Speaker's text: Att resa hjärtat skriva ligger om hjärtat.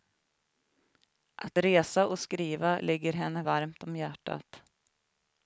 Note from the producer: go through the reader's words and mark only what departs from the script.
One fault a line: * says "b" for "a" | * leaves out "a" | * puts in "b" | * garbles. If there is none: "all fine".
* says "och" for "hjärtat"
* puts in "henne varmt"